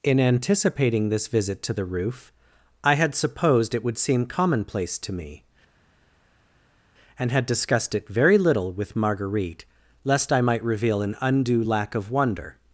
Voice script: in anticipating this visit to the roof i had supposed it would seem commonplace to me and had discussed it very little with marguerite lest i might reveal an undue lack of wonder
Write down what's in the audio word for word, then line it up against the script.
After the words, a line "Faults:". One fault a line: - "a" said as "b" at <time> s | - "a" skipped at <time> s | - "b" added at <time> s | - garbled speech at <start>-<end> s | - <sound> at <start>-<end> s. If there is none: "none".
in anticipating this visit to the roof i had supposed it would seem commonplace to me and had discussed it very little with marguerite lest i might reveal an undue lack of wonder
Faults:
none